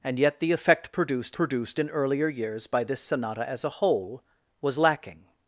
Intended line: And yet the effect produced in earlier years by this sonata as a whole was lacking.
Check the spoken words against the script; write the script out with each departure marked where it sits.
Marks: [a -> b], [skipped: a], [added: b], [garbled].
And yet the effect produced [added: produced] in earlier years by this sonata as a whole was lacking.